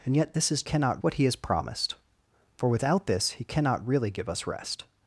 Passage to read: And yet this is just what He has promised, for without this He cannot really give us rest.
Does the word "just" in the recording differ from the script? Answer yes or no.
yes